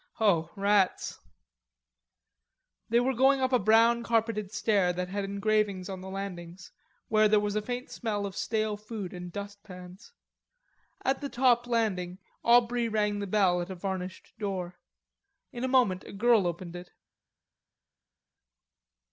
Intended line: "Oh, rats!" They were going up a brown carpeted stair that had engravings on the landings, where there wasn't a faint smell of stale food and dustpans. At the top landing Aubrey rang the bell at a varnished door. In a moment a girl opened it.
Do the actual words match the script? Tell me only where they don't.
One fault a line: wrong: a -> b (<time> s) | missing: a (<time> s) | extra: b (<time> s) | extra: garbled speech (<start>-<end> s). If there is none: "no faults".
wrong: wasn't -> was (7.4 s)